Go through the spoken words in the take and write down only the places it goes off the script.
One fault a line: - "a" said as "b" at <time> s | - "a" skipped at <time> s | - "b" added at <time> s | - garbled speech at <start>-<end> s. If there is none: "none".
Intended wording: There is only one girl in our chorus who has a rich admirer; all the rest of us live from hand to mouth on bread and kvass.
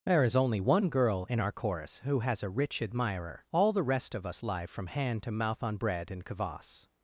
none